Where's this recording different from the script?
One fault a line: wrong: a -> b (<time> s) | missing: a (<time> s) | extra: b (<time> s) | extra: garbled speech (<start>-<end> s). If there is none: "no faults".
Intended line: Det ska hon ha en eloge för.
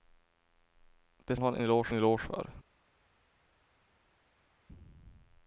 missing: ska (1.4 s)
extra: eloge (1.9 s)